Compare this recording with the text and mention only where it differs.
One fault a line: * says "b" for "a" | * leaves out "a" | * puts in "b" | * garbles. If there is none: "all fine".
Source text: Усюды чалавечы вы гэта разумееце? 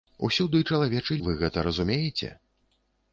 all fine